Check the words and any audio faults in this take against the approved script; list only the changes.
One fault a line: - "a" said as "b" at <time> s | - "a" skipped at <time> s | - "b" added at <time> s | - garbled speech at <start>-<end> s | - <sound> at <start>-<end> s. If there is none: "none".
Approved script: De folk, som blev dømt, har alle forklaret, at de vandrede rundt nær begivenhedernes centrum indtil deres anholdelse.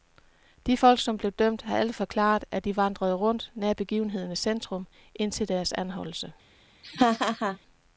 - laugh at 6.8-7.6 s